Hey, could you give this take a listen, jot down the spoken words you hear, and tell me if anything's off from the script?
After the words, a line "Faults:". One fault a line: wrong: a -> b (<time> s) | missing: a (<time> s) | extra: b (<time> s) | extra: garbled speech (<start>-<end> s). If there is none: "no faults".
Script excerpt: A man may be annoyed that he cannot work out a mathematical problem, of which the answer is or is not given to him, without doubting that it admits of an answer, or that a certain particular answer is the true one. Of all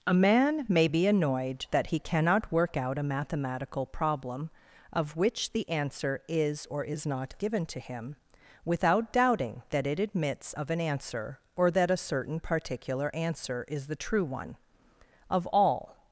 A man may be annoyed that he cannot work out a mathematical problem, of which the answer is or is not given to him, without doubting that it admits of an answer, or that a certain particular answer is the true one. Of all
Faults:
no faults